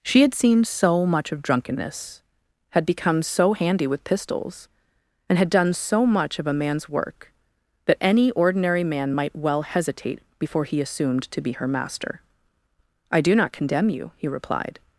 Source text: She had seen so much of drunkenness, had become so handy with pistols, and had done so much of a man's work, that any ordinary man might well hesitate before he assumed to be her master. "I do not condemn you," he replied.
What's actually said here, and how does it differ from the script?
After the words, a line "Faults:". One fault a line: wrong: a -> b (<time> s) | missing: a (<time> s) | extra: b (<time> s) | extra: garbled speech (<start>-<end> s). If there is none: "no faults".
She had seen so much of drunkenness, had become so handy with pistols, and had done so much of a man's work, that any ordinary man might well hesitate before he assumed to be her master. "I do not condemn you," he replied.
Faults:
no faults